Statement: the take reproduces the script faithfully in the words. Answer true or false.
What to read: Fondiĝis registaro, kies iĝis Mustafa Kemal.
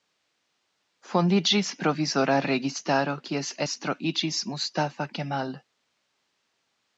false